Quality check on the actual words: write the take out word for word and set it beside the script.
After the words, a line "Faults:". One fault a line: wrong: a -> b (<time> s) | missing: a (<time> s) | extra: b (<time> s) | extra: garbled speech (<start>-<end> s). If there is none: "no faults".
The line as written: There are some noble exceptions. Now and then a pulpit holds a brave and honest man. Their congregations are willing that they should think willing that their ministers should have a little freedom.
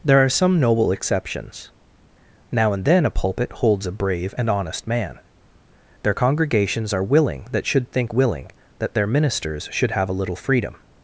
There are some noble exceptions. Now and then a pulpit holds a brave and honest man. Their congregations are willing that should think willing that their ministers should have a little freedom.
Faults:
missing: they (7.7 s)